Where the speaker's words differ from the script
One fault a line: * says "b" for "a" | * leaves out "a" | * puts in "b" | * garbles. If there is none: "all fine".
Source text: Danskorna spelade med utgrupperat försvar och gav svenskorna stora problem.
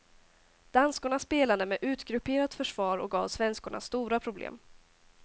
all fine